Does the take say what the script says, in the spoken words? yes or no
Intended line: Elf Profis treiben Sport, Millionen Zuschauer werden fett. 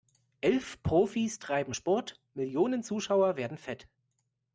yes